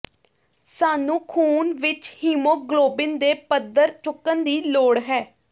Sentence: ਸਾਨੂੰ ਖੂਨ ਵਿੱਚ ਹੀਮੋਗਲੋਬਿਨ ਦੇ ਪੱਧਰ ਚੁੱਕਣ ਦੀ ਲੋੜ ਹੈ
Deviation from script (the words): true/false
false